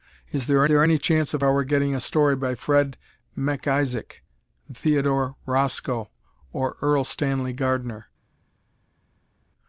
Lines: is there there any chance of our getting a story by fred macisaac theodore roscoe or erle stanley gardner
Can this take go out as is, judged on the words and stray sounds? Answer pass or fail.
pass